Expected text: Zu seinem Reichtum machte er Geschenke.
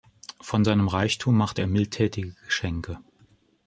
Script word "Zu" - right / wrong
wrong